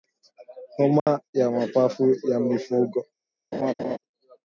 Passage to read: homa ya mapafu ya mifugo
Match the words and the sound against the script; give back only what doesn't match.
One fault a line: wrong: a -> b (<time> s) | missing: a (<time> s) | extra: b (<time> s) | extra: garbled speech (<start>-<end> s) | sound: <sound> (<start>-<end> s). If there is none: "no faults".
sound: dropout (1.0-1.1 s)
sound: laugh (3.5-4.0 s)